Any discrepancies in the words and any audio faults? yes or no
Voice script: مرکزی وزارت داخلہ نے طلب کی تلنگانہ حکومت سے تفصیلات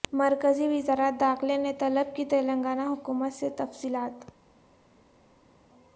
no